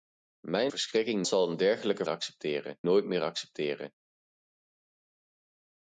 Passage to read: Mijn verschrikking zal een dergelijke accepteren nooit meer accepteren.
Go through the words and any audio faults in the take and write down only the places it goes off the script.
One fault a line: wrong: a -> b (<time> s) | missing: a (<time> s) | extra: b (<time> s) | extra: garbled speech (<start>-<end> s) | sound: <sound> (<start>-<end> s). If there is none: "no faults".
no faults